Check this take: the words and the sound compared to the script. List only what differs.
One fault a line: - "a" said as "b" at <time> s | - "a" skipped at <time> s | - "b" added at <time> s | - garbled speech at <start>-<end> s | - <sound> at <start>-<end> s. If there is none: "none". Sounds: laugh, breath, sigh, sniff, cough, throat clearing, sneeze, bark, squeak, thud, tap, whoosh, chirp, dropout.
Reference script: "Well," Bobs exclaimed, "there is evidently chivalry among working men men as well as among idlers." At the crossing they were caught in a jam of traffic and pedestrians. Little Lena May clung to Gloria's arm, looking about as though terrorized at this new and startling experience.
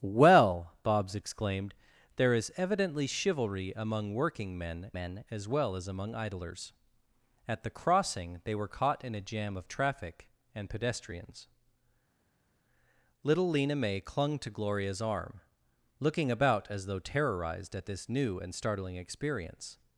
none